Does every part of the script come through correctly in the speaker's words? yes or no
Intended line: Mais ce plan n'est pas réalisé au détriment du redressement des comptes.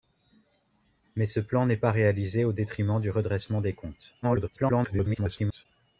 no